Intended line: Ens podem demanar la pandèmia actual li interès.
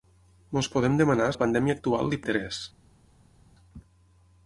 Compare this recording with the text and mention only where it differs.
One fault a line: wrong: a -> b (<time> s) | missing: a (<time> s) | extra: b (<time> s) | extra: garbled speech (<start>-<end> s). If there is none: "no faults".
no faults